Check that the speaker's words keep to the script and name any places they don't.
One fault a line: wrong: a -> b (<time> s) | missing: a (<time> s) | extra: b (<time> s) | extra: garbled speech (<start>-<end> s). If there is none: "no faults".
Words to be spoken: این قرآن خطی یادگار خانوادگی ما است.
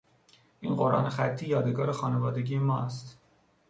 no faults